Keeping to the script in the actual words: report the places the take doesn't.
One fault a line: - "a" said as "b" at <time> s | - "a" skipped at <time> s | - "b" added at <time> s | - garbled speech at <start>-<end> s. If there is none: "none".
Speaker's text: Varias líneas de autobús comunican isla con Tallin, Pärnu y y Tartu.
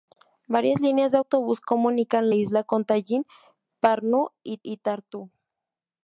none